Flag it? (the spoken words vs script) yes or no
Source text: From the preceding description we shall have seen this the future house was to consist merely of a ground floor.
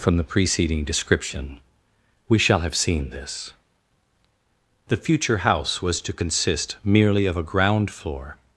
no